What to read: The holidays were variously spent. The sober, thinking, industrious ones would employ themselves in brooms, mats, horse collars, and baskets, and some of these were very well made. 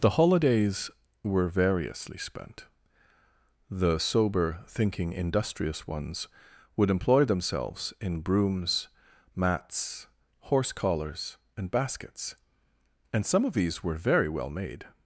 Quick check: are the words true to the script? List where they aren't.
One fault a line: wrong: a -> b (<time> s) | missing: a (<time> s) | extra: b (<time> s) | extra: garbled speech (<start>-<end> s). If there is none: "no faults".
no faults